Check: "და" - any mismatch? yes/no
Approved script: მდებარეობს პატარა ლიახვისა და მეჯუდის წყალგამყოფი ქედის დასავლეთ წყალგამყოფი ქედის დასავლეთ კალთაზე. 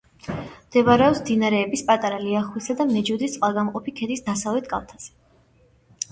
no